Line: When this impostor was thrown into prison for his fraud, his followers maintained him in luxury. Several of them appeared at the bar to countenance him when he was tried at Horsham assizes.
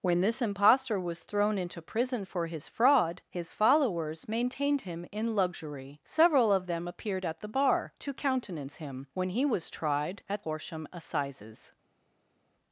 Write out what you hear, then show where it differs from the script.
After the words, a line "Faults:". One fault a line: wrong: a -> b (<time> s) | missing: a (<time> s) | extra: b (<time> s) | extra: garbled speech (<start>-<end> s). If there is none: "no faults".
When this impostor was thrown into prison for his fraud, his followers maintained him in luxury. Several of them appeared at the bar to countenance him when he was tried at Horsham assizes.
Faults:
no faults